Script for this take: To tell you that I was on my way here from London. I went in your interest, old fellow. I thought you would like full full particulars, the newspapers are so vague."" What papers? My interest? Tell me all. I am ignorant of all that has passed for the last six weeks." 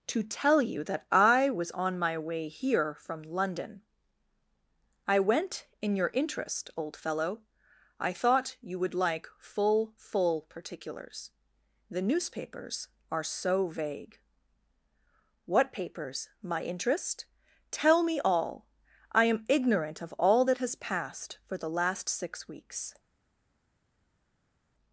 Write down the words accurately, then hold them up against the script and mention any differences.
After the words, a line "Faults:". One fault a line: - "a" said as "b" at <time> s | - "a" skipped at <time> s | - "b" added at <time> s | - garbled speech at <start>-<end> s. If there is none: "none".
To tell you that I was on my way here from London. I went in your interest, old fellow. I thought you would like full full particulars, the newspapers are so vague."" What papers? My interest? Tell me all. I am ignorant of all that has passed for the last six weeks."
Faults:
none